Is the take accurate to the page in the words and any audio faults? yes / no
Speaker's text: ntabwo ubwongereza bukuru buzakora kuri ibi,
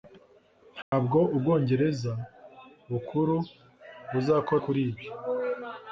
no